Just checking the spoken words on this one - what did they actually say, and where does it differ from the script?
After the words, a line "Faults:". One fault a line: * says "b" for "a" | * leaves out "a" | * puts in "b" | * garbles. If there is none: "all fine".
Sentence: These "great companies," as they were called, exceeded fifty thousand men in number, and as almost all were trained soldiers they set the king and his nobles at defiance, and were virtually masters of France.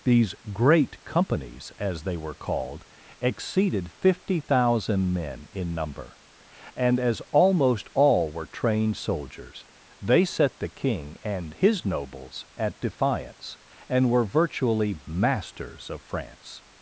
These "great companies," as they were called, exceeded fifty thousand men in number, and as almost all were trained soldiers they set the king and his nobles at defiance, and were virtually masters of France.
Faults:
all fine